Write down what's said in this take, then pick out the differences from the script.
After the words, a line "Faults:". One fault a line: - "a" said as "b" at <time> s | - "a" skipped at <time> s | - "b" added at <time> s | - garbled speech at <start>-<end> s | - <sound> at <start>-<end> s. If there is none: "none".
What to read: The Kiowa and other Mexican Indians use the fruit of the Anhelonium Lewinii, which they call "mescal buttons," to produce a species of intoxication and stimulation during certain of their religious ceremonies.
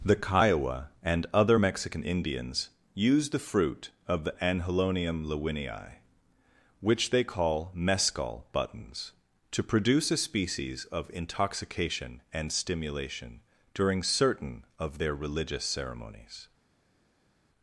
The Kiowa and other Mexican Indians use the fruit of the Anhelonium Lewinii, which they call "mescal buttons," to produce a species of intoxication and stimulation during certain of their religious ceremonies.
Faults:
none